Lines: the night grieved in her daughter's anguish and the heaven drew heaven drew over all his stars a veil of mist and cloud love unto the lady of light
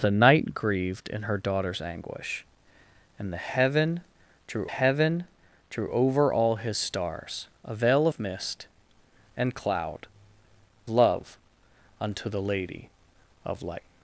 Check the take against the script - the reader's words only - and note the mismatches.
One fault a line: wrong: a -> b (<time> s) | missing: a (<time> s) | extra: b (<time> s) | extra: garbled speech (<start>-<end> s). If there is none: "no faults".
no faults